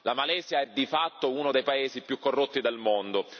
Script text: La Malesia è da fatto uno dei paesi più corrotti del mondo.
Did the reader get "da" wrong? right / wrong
wrong